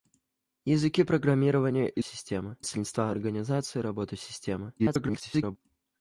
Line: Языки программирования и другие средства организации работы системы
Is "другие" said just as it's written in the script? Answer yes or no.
no